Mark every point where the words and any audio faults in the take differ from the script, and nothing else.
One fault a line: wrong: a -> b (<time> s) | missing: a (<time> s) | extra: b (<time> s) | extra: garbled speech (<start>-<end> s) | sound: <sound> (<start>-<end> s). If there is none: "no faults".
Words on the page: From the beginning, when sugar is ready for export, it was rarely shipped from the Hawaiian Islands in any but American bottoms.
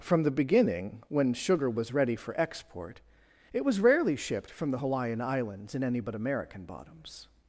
wrong: is -> was (1.7 s)